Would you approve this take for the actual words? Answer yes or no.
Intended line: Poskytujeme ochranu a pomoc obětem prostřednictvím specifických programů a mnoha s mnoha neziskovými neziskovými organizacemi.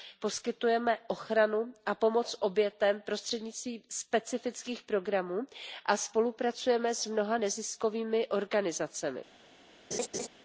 no